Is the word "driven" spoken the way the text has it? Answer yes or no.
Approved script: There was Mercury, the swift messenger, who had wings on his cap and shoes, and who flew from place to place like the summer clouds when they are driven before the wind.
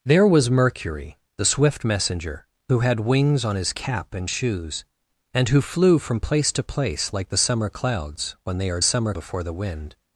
no